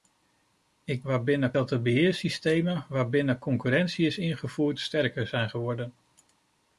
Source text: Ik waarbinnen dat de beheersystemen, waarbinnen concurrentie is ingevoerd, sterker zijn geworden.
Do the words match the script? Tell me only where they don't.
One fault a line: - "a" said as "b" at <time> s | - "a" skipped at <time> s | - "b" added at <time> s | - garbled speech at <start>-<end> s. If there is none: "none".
none